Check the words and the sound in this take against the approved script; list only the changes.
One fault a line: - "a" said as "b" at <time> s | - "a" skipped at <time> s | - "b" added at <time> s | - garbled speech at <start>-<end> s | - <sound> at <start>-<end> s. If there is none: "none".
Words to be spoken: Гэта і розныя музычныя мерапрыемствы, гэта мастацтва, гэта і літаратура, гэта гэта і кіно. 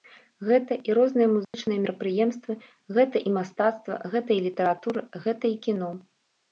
- dropout at 1.4-1.5 s
- "і" added at 3.3 s
- "гэта" skipped at 5.4 s